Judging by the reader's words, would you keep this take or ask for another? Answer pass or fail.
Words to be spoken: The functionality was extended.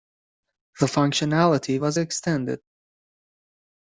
pass